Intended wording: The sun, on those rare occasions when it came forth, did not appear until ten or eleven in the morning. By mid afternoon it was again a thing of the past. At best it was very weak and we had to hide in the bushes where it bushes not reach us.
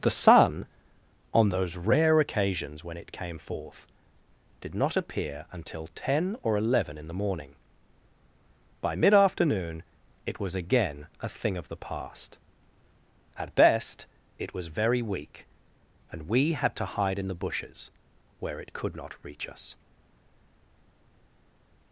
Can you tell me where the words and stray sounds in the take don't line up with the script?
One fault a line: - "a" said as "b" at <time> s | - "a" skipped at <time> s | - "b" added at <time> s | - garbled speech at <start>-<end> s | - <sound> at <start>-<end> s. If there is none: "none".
- "bushes" said as "could" at 18.7 s